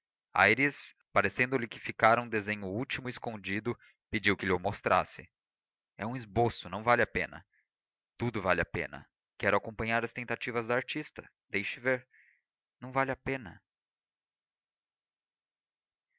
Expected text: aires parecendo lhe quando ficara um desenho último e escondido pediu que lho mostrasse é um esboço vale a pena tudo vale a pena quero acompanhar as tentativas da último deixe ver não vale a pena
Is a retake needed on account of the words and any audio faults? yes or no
yes